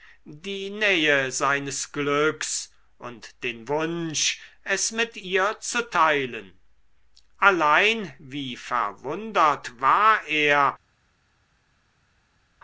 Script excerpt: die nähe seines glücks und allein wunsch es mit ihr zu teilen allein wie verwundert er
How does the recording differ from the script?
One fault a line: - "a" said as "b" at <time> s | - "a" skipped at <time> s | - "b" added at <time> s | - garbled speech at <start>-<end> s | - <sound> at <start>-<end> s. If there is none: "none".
- "allein" said as "den" at 3.4 s
- "war" added at 9.8 s